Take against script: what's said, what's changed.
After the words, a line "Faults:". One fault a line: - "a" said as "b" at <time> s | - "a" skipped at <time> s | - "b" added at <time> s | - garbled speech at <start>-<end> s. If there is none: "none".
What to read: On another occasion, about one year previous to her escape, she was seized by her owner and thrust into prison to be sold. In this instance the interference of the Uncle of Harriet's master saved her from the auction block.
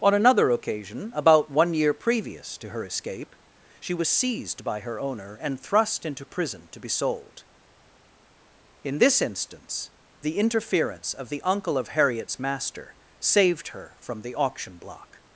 On another occasion, about one year previous to her escape, she was seized by her owner and thrust into prison to be sold. In this instance the interference of the Uncle of Harriet's master saved her from the auction block.
Faults:
none